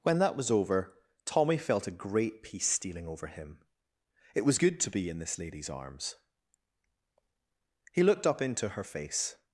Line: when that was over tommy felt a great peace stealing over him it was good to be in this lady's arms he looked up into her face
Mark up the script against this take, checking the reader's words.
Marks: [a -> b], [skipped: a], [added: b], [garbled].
when that was over tommy felt a great peace stealing over him it was good to be in this lady's arms he looked up into her face